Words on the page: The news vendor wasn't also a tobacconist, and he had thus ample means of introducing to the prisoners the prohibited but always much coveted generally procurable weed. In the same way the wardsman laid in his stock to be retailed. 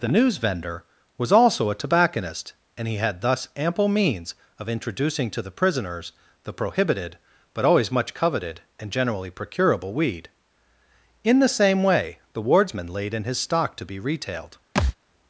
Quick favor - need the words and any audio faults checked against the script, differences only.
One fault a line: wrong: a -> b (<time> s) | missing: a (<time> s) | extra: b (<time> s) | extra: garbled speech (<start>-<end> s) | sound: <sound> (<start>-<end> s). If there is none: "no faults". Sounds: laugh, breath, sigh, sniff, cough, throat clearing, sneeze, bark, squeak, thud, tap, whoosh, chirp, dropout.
wrong: wasn't -> was (1.2 s)
extra: and (8.8 s)
sound: thud (14.7-14.9 s)